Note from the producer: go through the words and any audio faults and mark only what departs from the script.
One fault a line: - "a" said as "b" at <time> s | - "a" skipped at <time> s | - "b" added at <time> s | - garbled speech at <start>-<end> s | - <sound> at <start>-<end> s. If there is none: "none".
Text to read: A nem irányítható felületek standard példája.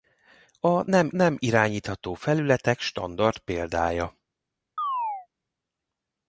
- "nem" added at 1.2 s
- chirp at 4.8-5.3 s